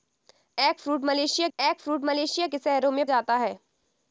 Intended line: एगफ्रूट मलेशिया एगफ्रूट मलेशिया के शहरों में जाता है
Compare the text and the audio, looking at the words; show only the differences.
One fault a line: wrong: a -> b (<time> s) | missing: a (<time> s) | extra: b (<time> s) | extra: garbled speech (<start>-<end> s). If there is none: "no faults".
no faults